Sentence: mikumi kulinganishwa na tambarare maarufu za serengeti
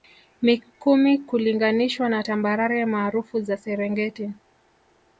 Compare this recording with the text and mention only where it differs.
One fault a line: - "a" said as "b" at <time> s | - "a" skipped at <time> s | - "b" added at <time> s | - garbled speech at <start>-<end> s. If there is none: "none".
none